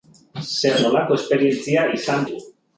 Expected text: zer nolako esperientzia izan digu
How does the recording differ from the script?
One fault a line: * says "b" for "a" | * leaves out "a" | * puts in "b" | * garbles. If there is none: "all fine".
all fine